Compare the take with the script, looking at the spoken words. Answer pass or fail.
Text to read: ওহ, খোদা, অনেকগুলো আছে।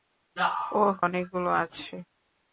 fail